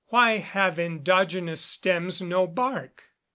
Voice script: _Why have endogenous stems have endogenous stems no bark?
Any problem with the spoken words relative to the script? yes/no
yes